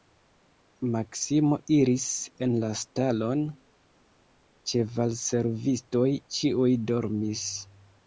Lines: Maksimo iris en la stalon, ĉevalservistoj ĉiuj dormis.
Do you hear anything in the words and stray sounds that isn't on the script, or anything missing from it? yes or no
no